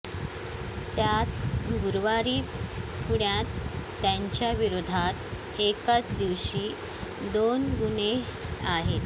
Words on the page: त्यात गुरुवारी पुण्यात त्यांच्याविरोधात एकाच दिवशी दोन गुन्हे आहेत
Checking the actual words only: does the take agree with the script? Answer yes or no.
yes